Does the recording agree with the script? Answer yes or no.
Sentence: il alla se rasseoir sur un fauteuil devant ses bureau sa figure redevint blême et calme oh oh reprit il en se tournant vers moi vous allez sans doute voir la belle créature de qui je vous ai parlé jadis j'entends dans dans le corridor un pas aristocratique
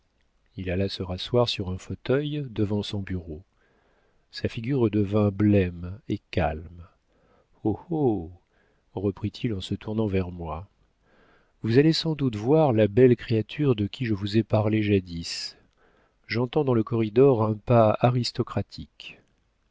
no